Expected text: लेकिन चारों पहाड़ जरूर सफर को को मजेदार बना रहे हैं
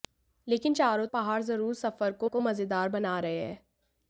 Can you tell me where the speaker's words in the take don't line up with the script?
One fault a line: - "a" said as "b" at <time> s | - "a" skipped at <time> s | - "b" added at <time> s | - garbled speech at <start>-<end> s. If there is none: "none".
none